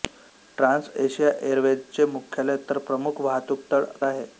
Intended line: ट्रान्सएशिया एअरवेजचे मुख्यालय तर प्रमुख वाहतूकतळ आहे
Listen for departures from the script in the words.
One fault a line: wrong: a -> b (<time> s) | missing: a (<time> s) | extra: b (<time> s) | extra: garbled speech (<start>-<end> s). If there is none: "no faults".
no faults